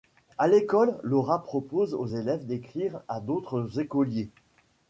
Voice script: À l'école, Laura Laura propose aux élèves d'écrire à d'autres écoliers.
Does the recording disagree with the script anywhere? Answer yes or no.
yes